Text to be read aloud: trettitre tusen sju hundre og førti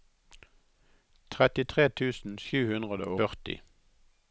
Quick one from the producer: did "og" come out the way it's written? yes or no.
no